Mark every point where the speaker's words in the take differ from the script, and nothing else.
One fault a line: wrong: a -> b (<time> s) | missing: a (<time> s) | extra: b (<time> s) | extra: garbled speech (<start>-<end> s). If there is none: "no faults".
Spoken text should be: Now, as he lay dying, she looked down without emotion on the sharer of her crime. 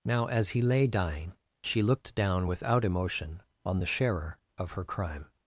no faults